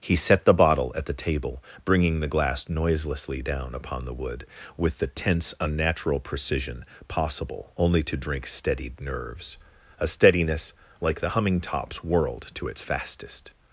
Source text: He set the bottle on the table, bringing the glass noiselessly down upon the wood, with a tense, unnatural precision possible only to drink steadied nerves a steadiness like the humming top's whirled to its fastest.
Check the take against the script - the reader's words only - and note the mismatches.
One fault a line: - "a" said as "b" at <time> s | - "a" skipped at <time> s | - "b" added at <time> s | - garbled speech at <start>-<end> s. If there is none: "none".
- "on" said as "at" at 0.9 s
- "a" said as "the" at 5.0 s